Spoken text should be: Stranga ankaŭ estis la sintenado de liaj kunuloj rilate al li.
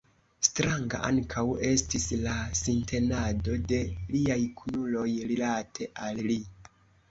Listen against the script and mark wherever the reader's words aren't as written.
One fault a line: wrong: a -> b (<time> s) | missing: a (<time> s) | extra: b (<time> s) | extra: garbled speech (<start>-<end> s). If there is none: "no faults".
no faults